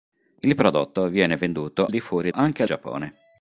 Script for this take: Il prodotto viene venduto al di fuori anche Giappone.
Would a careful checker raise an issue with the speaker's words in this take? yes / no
no